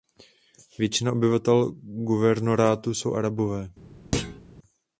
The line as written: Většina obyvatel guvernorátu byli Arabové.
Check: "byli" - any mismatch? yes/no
yes